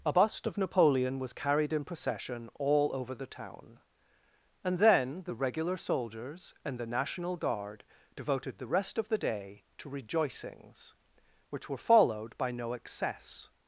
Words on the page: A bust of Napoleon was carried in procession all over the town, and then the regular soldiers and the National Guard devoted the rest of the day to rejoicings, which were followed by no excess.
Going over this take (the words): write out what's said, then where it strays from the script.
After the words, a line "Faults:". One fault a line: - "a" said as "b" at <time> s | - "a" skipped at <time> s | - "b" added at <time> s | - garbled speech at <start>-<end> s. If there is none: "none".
A bust of Napoleon was carried in procession all over the town, and then the regular soldiers and the National Guard devoted the rest of the day to rejoicings, which were followed by no excess.
Faults:
none